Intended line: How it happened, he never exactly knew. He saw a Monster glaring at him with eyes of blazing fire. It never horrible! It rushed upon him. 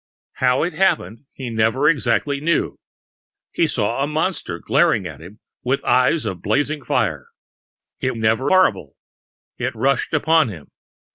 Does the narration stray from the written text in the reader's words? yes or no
no